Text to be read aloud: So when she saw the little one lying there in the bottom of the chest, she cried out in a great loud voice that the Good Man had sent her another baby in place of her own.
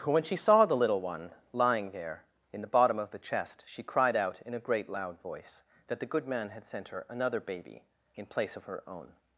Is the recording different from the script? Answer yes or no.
yes